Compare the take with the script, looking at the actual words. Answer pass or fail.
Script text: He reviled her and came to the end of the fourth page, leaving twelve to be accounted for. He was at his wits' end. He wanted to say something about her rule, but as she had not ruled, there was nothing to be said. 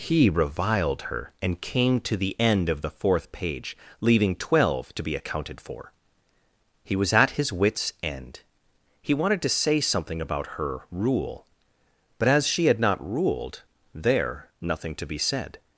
fail